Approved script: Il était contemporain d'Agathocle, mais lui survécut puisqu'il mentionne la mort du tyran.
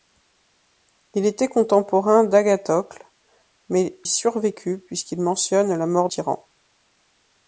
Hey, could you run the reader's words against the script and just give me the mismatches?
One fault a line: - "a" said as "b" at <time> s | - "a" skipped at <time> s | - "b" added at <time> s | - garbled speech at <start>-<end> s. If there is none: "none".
- "lui" skipped at 4.0 s
- "du" skipped at 6.1 s